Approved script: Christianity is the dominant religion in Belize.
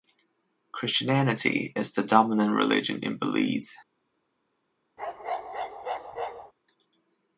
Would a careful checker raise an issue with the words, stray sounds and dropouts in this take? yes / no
yes